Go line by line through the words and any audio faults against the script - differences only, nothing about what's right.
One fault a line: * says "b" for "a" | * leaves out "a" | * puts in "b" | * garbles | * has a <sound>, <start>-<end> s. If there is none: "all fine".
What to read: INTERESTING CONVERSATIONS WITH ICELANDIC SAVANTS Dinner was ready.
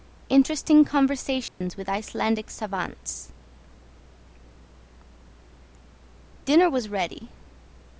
* has a dropout, 1.5-1.6 s